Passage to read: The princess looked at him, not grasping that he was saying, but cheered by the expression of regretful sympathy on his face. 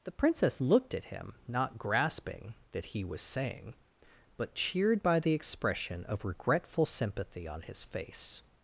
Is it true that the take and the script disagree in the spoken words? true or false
false